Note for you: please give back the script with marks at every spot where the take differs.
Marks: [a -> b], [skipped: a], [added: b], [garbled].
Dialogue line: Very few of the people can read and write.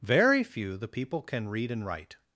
Very few [skipped: of] the people can read and write.